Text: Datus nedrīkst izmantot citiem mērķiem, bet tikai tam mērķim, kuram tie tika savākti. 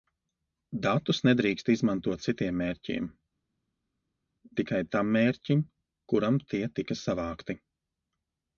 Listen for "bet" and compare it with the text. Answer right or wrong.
wrong